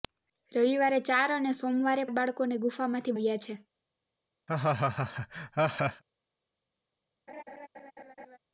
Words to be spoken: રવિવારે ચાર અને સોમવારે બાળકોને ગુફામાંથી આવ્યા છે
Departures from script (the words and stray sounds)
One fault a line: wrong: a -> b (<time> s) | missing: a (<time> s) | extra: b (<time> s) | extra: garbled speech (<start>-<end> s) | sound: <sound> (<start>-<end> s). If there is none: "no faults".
sound: laugh (4.5-6.0 s)
sound: laugh (7.3-8.4 s)